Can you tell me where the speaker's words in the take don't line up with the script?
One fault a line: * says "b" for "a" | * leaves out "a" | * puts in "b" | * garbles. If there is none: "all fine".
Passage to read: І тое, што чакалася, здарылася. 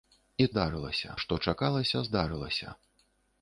* says "здарылася" for "тое"